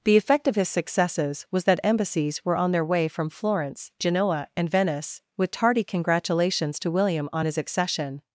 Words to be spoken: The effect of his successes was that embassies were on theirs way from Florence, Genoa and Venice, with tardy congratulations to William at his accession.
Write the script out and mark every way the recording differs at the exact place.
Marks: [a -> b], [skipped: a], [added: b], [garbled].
The effect of his successes was that embassies were on [theirs -> their] way from Florence, Genoa and Venice, with tardy congratulations to William [at -> on] his accession.